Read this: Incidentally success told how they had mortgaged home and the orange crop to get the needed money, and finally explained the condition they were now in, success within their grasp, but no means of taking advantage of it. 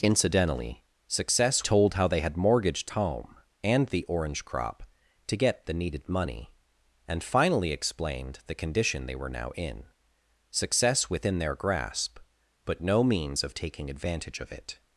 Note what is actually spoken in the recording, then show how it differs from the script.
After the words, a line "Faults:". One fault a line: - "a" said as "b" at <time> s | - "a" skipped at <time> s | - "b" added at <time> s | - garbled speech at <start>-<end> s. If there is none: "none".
Incidentally success told how they had mortgaged home and the orange crop to get the needed money, and finally explained the condition they were now in, success within their grasp, but no means of taking advantage of it.
Faults:
none